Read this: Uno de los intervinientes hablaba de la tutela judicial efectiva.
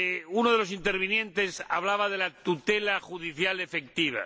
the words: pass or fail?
pass